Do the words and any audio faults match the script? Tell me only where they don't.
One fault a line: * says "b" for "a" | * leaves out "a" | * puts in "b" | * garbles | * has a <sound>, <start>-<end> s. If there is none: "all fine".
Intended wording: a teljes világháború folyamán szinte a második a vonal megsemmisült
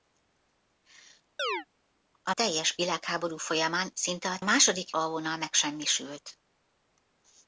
* has a chirp, 1.4-1.7 s